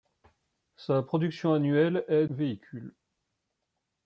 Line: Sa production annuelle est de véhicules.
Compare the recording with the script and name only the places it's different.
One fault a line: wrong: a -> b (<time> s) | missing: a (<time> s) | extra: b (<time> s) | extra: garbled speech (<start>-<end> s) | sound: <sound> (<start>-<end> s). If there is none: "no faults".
missing: de (2.2 s)